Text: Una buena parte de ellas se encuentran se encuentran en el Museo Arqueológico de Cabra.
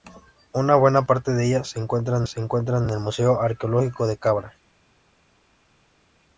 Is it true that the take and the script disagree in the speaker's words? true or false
false